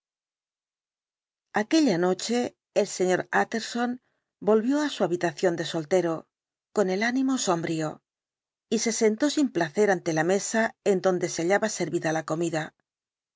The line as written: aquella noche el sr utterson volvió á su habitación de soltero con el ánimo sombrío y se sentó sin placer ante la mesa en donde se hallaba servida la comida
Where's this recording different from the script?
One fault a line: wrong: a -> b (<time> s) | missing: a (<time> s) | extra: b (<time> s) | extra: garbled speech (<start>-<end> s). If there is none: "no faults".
no faults